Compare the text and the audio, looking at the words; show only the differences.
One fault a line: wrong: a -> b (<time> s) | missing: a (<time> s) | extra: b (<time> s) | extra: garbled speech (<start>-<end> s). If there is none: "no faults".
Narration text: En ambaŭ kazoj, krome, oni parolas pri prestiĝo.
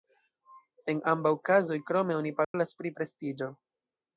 no faults